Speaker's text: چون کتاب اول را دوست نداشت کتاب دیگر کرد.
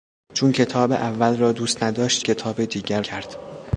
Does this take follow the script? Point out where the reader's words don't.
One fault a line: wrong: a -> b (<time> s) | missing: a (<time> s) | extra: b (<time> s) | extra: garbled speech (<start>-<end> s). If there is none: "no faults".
no faults